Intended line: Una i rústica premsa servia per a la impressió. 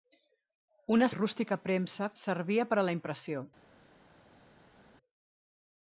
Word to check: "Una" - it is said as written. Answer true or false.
true